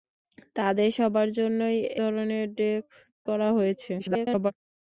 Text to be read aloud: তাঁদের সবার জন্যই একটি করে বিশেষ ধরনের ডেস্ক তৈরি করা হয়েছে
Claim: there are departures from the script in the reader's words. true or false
true